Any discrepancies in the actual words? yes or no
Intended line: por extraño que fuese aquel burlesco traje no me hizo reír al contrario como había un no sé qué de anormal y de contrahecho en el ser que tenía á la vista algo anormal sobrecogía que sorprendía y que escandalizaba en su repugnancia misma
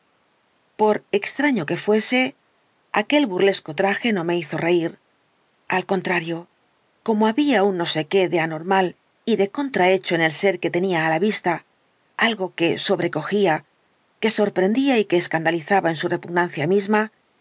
yes